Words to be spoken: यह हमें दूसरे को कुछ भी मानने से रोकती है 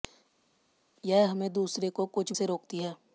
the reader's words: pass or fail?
fail